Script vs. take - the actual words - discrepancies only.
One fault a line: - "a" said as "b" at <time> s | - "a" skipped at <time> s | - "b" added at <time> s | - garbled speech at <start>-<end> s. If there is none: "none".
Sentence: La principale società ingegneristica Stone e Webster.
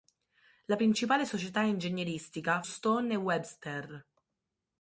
none